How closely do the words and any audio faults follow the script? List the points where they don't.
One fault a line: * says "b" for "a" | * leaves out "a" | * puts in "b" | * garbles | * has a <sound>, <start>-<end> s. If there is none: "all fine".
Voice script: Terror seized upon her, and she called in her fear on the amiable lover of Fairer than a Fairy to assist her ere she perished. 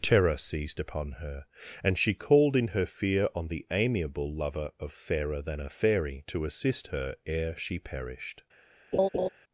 * has a laugh, 8.9-9.3 s